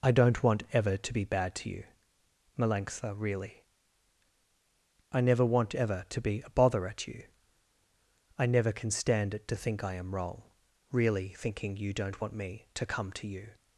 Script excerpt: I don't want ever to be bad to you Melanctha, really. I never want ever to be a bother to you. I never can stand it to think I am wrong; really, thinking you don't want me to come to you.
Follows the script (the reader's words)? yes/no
no